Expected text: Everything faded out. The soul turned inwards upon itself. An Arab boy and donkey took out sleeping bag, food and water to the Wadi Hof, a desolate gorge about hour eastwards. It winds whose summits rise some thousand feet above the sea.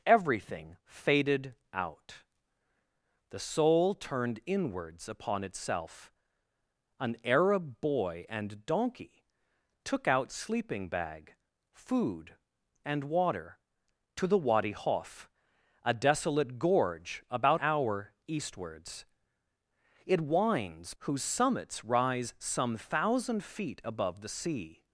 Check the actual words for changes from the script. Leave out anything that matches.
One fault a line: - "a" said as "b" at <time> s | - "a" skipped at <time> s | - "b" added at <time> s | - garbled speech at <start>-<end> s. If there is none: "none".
none